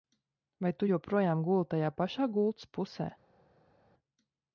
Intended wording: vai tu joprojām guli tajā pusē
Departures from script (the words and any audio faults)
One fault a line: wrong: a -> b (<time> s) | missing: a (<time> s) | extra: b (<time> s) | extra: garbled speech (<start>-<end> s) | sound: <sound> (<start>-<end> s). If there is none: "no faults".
extra: pašā gultas (2.0 s)